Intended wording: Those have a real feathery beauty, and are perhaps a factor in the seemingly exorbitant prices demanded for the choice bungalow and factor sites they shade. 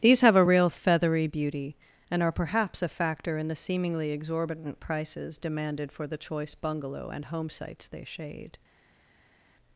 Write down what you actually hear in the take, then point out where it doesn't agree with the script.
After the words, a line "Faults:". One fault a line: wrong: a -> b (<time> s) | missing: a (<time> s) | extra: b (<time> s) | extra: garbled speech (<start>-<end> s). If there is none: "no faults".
These have a real feathery beauty, and are perhaps a factor in the seemingly exorbitant prices demanded for the choice bungalow and home sites they shade.
Faults:
wrong: Those -> These (0.0 s)
wrong: factor -> home (7.3 s)